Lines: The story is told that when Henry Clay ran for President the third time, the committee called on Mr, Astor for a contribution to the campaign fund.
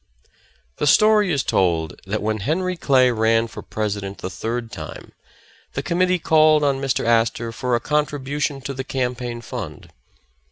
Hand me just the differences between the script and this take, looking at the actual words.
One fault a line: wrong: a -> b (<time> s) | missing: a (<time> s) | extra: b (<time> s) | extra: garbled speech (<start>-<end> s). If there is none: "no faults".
no faults